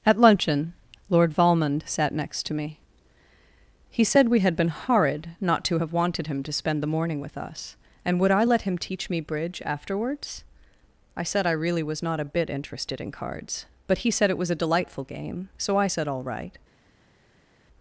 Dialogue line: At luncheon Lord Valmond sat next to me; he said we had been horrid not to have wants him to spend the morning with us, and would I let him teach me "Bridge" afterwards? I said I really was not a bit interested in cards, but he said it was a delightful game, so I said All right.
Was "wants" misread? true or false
true